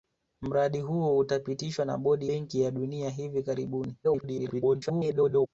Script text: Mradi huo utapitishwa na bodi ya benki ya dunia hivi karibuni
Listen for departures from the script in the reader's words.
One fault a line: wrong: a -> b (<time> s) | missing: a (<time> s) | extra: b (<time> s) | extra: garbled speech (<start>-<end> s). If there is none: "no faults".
missing: ya (2.3 s)
extra: garbled speech (4.0-5.5 s)